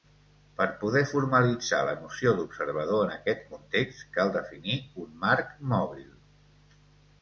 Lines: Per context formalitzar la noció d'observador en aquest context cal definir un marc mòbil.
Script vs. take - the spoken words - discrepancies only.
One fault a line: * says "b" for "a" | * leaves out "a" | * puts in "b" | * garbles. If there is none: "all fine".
* says "poder" for "context"